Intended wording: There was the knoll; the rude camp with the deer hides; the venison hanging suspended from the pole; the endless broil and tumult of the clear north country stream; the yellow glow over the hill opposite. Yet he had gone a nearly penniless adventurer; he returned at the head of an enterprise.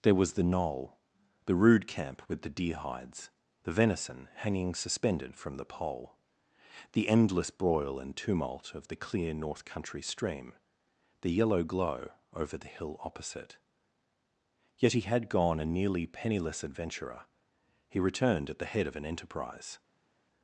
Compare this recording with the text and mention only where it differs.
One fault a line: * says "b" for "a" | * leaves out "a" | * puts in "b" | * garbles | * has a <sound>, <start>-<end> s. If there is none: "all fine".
all fine